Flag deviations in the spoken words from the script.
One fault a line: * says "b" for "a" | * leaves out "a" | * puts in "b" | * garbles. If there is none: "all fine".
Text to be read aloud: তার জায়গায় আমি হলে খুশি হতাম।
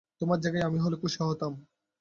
* says "তোমার" for "তার"